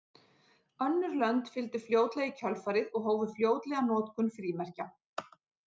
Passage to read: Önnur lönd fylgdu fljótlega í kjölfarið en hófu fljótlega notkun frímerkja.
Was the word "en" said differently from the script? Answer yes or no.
yes